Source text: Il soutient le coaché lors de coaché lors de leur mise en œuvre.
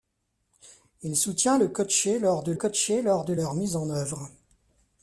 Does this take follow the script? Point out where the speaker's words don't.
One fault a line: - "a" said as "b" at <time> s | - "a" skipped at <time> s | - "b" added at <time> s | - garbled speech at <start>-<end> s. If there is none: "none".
none